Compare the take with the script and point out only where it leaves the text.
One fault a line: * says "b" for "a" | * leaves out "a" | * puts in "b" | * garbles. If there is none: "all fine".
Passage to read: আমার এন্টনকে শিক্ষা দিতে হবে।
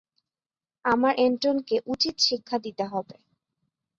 * puts in "উচিত"